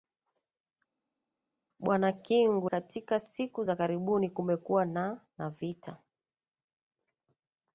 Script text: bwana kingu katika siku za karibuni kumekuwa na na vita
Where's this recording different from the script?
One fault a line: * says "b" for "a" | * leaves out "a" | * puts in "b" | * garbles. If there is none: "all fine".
all fine